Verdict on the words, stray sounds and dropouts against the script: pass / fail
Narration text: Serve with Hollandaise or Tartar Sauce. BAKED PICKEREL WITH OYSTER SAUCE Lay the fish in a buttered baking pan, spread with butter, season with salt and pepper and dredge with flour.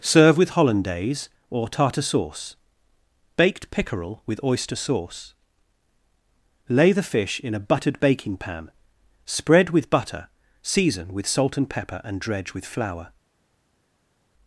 pass